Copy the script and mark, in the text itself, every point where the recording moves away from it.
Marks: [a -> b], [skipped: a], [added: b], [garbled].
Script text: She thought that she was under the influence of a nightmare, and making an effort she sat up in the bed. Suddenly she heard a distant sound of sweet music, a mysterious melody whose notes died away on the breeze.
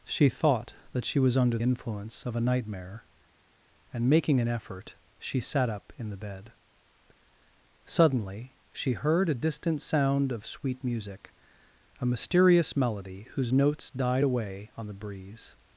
She thought that she was under [skipped: the] influence of a nightmare, and making an effort she sat up in the bed. Suddenly she heard a distant sound of sweet music, a mysterious melody whose notes died away on the breeze.